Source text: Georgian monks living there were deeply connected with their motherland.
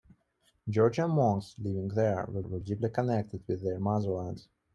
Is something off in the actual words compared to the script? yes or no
yes